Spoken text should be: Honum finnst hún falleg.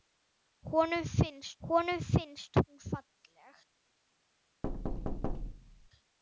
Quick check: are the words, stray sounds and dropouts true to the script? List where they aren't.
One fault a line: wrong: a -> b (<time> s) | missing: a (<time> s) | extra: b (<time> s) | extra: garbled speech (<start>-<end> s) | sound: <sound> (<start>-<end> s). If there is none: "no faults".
extra: honum finnst (1.7 s)
sound: thud (4.6-5.9 s)